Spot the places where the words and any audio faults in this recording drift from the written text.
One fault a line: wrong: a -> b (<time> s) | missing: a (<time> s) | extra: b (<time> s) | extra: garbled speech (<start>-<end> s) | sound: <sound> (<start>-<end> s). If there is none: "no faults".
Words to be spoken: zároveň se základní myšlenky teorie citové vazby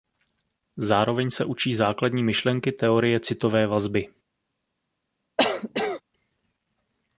extra: učí (1.4 s)
sound: cough (5.4-6.0 s)